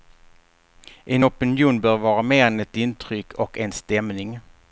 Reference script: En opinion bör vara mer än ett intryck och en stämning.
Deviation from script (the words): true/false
false